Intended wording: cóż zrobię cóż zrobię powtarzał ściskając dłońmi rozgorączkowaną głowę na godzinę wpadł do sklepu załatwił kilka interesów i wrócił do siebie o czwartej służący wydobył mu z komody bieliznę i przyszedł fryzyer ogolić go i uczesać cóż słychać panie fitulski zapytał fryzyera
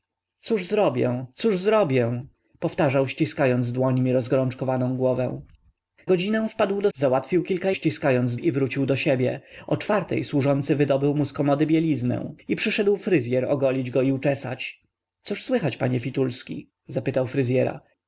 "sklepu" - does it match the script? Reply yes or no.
no